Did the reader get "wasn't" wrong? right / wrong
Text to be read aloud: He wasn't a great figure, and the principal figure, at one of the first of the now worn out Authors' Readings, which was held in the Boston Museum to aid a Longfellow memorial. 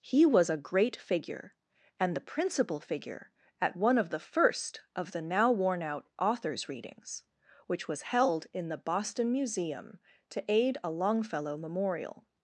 wrong